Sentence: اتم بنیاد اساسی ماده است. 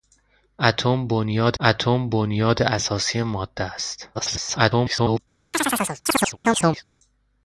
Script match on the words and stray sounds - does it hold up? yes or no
no